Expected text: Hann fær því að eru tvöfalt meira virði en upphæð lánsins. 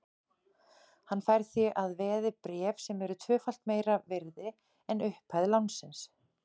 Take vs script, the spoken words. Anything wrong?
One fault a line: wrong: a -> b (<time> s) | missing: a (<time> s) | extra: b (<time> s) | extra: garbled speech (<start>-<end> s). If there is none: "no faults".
extra: veði bréf sem (2.0 s)